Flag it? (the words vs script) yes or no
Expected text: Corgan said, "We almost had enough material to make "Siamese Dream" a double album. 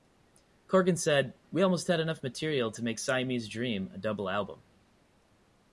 no